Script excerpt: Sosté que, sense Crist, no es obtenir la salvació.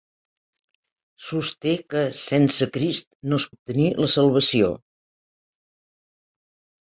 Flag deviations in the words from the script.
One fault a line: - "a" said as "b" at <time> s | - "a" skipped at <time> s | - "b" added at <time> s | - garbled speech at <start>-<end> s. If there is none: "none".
none